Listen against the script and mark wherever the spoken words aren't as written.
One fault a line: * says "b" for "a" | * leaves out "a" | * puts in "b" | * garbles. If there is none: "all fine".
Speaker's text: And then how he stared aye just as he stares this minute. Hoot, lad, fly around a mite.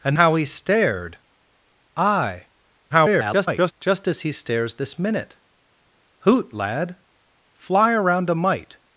* leaves out "then"
* garbles